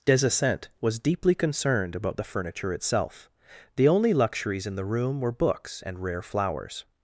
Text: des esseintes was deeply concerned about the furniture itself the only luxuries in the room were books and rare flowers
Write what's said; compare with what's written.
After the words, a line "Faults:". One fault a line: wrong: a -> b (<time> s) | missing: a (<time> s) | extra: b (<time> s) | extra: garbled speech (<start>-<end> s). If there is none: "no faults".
des esseintes was deeply concerned about the furniture itself the only luxuries in the room were books and rare flowers
Faults:
no faults